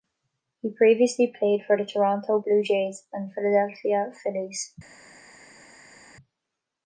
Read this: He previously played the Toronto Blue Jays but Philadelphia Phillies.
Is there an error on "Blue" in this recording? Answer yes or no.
no